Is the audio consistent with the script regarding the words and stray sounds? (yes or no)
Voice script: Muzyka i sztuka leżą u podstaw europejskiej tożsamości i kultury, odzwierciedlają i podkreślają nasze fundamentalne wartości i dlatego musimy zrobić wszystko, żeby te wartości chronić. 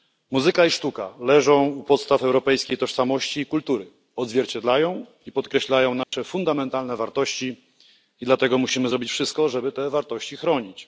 no